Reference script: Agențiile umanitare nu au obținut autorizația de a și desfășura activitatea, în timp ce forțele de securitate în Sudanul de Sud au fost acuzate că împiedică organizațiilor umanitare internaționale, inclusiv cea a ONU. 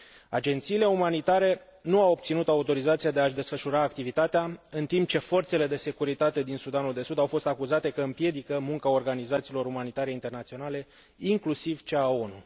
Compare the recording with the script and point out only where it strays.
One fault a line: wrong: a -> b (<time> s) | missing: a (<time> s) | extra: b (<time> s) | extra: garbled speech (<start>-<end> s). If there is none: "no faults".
wrong: în -> din (6.4 s)
extra: munca (8.6 s)